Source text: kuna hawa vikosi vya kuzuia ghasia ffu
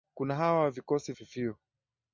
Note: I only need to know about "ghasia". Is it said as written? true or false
false